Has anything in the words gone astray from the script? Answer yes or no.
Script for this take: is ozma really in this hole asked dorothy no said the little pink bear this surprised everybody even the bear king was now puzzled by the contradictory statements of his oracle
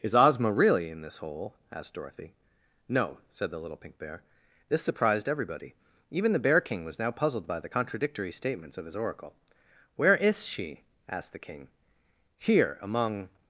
yes